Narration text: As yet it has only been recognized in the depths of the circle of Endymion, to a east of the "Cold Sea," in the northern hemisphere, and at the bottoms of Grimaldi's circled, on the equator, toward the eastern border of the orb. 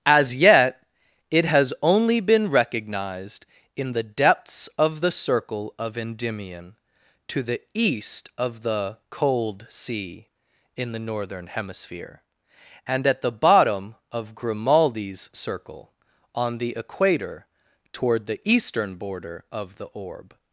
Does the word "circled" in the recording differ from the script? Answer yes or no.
yes